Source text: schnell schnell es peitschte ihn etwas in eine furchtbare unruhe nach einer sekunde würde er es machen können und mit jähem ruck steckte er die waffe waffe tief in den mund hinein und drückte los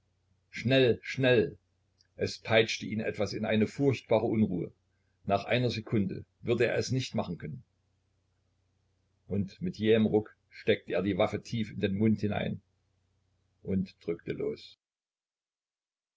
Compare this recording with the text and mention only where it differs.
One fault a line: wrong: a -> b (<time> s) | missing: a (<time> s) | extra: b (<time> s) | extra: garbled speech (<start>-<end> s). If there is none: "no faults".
extra: nicht (6.9 s)
missing: waffe (11.4 s)